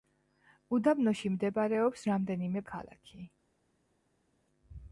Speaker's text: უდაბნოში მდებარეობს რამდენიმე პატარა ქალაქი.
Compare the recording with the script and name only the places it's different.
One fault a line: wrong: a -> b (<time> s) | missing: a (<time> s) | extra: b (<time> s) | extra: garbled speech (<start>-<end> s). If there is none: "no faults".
missing: პატარა (2.6 s)